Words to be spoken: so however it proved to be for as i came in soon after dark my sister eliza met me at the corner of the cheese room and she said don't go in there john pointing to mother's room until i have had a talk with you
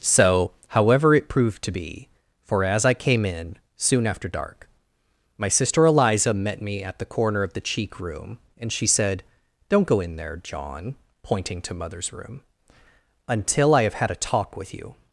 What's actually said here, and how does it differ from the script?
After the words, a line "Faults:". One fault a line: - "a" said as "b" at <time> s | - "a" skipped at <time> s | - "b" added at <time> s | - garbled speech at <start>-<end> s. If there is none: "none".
so however it proved to be for as i came in soon after dark my sister eliza met me at the corner of the cheek room and she said don't go in there john pointing to mother's room until i have had a talk with you
Faults:
- "cheese" said as "cheek" at 7.6 s